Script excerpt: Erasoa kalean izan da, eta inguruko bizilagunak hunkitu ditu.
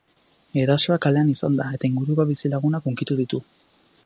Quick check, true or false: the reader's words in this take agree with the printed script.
true